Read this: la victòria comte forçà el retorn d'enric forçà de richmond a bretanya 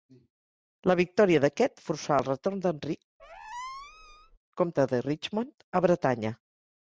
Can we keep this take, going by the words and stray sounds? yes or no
no